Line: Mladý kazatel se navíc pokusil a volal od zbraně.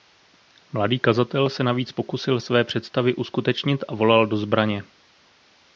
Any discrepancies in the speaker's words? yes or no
yes